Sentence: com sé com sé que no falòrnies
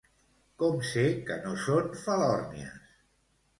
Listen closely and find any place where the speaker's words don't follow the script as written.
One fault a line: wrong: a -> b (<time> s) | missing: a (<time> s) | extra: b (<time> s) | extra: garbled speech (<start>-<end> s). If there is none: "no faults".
missing: com sé (1.0 s)
extra: són (1.7 s)